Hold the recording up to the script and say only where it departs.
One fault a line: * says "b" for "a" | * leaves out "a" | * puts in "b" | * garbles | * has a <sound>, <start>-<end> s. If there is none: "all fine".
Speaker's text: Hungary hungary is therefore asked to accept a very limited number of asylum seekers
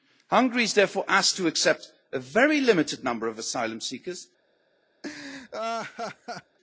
* leaves out "hungary"
* has a laugh, 5.0-6.6 s